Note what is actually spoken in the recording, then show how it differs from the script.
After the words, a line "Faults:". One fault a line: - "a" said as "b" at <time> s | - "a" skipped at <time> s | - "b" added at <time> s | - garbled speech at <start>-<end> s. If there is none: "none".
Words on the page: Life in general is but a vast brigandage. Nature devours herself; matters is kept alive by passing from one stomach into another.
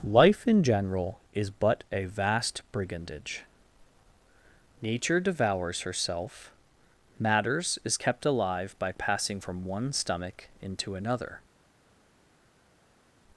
Life in general is but a vast brigandage. Nature devours herself; matters is kept alive by passing from one stomach into another.
Faults:
none